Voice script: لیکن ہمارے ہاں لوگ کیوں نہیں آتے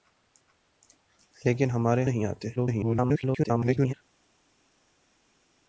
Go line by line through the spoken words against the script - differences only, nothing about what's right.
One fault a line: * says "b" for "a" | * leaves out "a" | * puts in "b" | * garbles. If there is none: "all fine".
* leaves out "ہاں لوگ کیوں"
* garbles